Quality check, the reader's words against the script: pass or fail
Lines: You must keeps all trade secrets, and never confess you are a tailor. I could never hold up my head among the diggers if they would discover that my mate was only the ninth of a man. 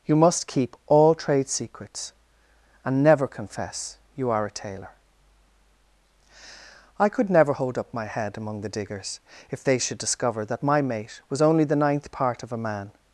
fail